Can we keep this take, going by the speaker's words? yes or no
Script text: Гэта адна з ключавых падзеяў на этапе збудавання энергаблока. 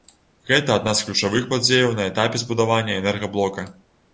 yes